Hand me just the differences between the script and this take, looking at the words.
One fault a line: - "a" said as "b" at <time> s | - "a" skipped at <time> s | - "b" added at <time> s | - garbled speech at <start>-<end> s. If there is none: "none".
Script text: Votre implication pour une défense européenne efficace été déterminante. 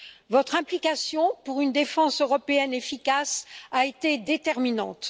- "a" added at 3.7 s